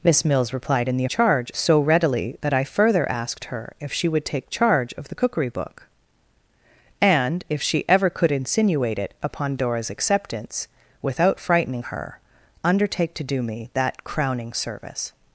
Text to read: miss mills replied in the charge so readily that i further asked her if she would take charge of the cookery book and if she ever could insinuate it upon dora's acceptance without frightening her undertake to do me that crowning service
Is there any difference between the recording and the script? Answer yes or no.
no